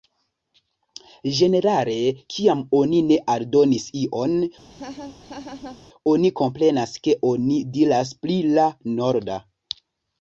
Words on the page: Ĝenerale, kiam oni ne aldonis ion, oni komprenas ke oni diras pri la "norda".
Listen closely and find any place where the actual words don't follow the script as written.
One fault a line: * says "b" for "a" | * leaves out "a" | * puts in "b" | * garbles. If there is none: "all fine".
all fine